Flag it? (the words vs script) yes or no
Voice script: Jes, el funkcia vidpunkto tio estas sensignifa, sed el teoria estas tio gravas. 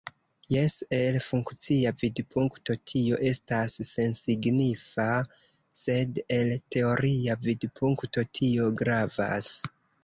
yes